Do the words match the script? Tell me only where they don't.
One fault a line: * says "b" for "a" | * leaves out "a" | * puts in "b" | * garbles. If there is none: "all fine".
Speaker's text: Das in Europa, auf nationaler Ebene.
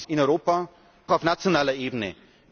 all fine